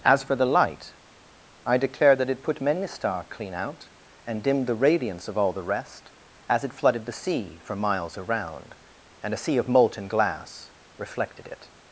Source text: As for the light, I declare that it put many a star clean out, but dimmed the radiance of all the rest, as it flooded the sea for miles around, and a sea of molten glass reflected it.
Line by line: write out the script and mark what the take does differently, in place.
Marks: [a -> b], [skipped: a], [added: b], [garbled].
As for the light, I declare that it put many a star clean out, [but -> and] dimmed the radiance of all the rest, as it flooded the sea for miles around, and a sea of molten glass reflected it.